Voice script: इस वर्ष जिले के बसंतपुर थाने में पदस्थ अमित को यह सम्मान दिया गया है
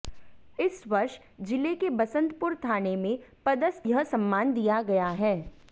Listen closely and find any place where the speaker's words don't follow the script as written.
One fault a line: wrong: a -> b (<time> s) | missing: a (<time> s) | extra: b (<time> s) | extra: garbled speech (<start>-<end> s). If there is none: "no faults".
missing: अमित को (3.9 s)